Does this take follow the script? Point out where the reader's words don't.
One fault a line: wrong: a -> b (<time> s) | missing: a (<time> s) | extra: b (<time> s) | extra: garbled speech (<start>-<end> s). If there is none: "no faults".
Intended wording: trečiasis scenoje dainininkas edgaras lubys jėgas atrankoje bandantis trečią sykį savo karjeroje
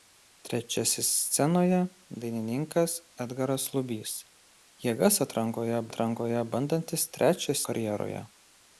extra: atrankoje (5.9 s)
missing: sykį savo (7.6 s)